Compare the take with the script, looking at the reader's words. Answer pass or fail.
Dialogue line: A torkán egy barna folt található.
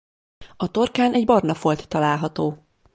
pass